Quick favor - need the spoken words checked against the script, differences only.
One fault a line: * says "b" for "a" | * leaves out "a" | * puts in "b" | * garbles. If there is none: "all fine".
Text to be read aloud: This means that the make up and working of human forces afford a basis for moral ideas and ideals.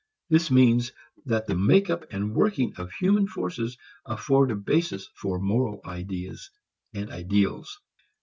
all fine